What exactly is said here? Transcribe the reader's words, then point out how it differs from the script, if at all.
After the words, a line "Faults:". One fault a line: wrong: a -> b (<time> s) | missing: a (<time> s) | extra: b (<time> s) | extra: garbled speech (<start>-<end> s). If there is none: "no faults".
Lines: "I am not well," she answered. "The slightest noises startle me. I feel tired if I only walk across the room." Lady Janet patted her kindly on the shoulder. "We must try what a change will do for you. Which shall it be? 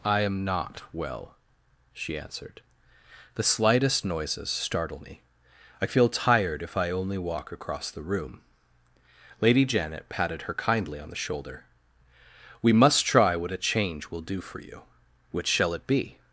"I am not well," she answered. "The slightest noises startle me. I feel tired if I only walk across the room." Lady Janet patted her kindly on the shoulder. "We must try what a change will do for you. Which shall it be?
Faults:
no faults